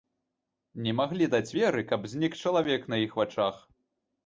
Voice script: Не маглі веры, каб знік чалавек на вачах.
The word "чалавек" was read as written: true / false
true